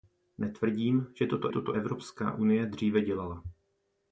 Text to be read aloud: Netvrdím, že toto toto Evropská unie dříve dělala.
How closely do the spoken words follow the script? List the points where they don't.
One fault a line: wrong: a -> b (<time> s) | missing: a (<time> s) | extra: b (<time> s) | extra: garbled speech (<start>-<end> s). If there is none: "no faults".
no faults